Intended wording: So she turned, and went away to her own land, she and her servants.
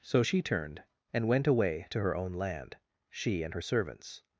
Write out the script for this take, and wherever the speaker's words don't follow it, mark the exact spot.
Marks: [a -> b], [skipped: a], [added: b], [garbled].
So she turned, and went away to her own land, she and her servants.